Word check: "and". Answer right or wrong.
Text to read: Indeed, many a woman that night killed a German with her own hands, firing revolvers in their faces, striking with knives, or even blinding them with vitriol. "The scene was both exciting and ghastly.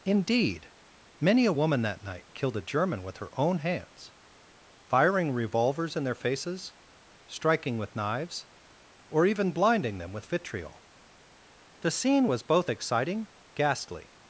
wrong